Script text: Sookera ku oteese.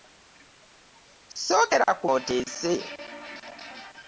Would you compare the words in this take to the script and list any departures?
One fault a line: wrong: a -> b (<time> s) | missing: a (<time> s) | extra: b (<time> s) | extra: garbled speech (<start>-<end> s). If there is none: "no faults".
no faults